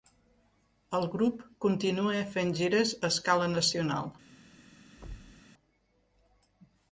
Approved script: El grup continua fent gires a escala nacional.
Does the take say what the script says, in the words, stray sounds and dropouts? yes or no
no